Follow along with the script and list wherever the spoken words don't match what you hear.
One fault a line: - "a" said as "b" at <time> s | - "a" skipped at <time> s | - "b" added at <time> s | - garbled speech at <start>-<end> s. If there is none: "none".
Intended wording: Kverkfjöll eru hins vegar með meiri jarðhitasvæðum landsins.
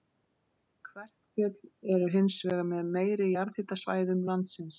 none